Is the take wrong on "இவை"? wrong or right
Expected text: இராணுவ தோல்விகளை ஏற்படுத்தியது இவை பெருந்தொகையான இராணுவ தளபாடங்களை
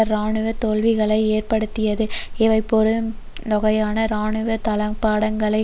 right